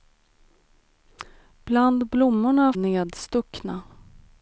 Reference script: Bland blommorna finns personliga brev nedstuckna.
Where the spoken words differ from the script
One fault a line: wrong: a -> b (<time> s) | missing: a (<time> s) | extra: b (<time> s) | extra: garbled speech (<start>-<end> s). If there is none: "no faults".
missing: finns personliga brev (2.7 s)